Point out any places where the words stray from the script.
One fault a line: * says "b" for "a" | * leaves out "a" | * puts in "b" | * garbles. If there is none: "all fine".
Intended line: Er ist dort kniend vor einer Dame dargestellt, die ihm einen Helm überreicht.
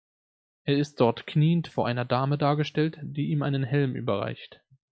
all fine